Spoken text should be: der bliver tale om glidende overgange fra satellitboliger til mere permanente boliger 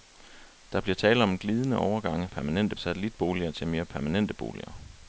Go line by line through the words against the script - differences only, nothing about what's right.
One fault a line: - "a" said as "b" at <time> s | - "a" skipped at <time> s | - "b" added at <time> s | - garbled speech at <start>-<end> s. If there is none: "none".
- "fra" said as "permanente" at 2.3 s